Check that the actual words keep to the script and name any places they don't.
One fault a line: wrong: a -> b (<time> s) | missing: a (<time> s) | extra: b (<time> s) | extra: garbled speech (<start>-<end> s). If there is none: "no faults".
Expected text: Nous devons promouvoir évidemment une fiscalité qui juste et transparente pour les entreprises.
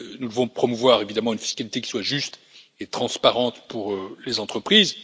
extra: soit (1.9 s)